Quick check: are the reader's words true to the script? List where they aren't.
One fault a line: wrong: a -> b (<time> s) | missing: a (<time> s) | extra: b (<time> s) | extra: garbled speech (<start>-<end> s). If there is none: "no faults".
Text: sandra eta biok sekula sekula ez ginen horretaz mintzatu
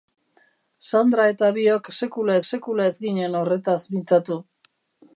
no faults